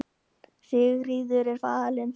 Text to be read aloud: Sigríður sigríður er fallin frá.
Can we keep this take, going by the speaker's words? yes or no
no